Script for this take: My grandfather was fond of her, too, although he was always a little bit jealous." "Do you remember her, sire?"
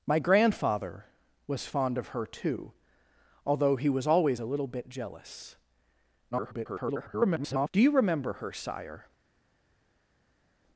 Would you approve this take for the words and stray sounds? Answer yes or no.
no